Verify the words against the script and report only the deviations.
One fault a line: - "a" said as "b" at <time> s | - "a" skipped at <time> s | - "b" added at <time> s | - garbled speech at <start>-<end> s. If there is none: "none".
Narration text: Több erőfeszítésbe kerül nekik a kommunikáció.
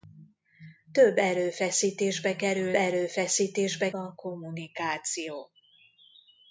- "nekik" said as "erőfeszítésbe" at 2.7 s